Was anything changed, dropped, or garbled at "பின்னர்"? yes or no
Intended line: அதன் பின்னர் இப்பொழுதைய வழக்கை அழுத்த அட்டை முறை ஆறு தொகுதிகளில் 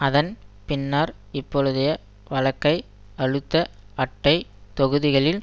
no